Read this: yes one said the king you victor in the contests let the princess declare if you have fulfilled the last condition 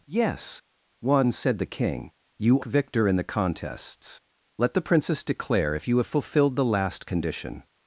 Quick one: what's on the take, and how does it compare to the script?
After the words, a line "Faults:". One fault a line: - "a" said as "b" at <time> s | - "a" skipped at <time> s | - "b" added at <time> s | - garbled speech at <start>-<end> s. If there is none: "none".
yes one said the king you victor in the contests let the princess declare if you have fulfilled the last condition
Faults:
none